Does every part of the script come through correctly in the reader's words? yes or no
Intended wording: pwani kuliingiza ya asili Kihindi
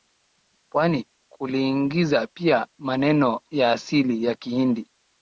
no